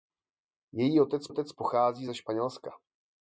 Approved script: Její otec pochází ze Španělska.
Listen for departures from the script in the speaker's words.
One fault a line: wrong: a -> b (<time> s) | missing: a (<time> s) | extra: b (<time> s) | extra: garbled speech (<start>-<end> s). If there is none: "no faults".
extra: otec (1.3 s)